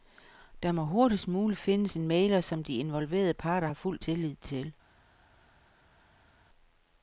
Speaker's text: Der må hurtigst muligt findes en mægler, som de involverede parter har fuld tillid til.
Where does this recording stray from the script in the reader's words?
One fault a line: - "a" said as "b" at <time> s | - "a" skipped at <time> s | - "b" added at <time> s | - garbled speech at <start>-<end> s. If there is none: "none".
none